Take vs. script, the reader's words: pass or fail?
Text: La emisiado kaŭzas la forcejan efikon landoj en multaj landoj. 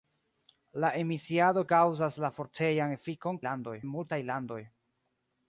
pass